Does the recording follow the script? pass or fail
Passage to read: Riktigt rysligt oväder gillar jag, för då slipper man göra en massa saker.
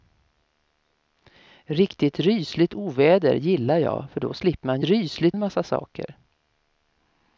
fail